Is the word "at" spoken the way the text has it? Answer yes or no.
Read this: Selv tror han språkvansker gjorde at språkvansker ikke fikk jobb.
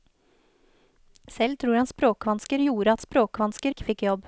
yes